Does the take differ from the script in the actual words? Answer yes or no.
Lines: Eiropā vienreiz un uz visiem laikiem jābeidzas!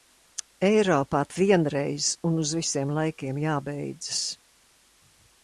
no